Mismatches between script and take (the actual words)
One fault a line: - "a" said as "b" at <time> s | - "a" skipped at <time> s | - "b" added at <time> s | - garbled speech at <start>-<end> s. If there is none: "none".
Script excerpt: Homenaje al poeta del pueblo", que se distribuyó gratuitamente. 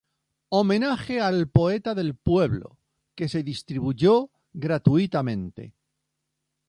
none